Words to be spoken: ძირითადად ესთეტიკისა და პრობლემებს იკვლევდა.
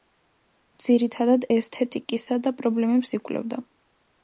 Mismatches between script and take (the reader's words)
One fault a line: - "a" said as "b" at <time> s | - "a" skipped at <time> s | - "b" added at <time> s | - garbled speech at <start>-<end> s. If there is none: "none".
none